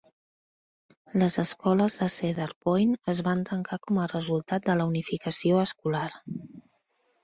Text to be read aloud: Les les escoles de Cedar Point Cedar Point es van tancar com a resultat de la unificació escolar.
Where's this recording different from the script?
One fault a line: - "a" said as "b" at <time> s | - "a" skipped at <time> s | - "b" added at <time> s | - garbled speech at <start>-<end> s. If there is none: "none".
- "les" skipped at 1.4 s
- "Cedar Point" skipped at 3.0 s